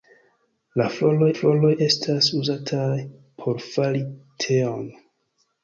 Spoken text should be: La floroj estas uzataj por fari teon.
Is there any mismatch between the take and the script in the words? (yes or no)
yes